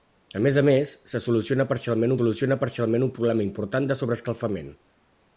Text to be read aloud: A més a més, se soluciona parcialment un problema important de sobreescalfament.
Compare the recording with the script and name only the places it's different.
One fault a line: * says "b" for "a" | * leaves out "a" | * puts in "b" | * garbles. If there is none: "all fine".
* puts in "soluciona parcialment"